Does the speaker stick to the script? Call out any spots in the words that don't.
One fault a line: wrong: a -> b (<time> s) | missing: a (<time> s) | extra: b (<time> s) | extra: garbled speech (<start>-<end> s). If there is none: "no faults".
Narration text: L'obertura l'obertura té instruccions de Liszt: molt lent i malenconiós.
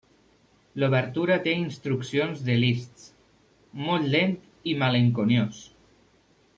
missing: l'obertura (1.4 s)